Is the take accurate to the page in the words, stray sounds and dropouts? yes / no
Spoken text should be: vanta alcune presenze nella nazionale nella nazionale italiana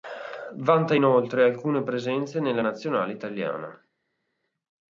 no